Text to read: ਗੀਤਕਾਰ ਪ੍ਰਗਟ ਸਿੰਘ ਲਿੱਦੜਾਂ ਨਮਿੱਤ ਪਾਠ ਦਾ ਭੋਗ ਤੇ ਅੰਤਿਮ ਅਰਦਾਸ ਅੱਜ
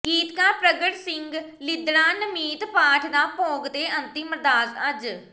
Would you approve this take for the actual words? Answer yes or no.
yes